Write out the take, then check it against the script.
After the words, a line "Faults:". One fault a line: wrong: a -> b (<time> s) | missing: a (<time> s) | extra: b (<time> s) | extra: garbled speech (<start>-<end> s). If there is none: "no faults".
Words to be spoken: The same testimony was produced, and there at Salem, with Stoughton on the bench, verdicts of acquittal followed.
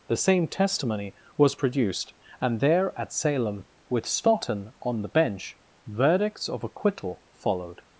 The same testimony was produced, and there at Salem, with Stoughton on the bench, verdicts of acquittal followed.
Faults:
no faults